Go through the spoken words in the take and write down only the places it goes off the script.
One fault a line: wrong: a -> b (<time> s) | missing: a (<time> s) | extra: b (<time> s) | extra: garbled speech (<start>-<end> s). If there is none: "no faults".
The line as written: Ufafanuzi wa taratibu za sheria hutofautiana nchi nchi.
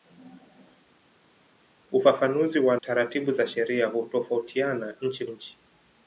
no faults